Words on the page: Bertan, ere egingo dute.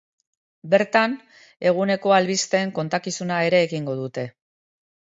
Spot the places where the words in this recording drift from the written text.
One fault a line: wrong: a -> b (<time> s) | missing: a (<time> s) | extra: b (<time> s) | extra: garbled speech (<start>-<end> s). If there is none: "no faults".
extra: eguneko albisteen kontakizuna (1.7 s)